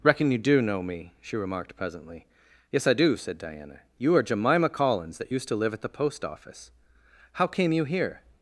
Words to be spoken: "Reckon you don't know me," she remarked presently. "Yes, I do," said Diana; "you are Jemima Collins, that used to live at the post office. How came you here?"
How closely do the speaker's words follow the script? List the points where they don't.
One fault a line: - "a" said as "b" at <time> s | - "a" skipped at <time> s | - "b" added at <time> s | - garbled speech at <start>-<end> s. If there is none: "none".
- "don't" said as "do" at 0.4 s